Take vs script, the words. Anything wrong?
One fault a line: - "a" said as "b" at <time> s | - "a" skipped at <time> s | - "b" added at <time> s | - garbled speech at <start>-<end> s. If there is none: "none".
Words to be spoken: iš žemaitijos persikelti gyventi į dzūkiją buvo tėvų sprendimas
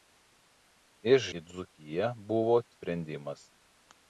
- "žemaitijos persikelti gyventi" skipped at 1.2 s
- "tėvų" skipped at 2.6 s